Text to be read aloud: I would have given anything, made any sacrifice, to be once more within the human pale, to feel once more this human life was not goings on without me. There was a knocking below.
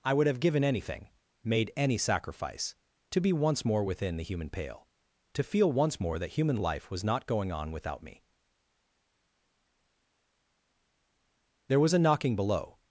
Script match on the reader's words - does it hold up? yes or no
no